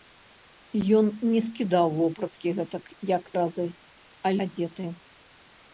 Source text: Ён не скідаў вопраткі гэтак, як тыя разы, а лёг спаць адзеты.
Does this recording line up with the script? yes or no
no